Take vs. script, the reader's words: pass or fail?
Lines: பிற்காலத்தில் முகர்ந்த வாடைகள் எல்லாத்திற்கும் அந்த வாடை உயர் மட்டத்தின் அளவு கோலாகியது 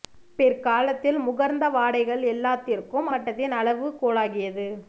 fail